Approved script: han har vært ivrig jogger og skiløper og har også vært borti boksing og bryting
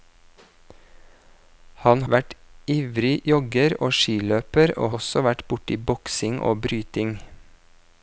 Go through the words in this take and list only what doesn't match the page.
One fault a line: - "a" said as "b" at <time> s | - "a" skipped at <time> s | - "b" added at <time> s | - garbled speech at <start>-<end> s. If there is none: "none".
- "har" skipped at 2.0 s
- "har" skipped at 4.9 s